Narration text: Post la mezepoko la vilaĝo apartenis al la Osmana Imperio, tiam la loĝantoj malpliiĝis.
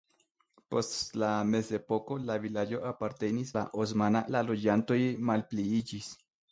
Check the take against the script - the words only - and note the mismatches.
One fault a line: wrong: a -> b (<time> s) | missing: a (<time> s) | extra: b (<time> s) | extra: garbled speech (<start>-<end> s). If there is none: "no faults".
missing: al (3.5 s)
missing: Imperio tiam (4.2 s)